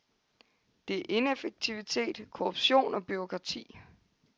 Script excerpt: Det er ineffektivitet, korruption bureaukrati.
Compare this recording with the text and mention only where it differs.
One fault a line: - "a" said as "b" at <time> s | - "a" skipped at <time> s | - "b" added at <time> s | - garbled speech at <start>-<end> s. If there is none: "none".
- "og" added at 2.9 s